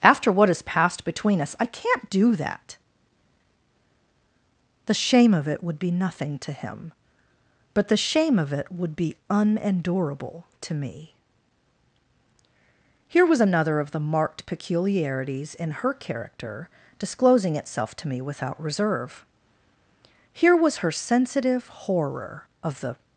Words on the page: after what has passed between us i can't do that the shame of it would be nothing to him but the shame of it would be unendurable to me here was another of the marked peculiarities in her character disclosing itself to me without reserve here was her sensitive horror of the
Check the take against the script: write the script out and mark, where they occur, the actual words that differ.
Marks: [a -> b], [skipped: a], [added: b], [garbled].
after what has passed between us i can't do that the shame of it would be nothing to him but the shame of it would be unendurable to me here was another of the marked peculiarities in her character disclosing itself to me without reserve here was her sensitive horror of the